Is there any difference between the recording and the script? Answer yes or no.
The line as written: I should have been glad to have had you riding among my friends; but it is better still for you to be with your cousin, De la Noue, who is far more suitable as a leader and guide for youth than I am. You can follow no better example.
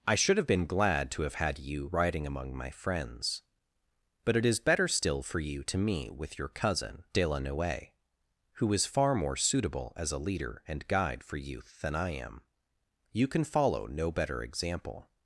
yes